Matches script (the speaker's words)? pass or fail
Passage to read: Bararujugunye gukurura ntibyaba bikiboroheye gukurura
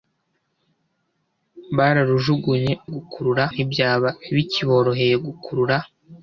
pass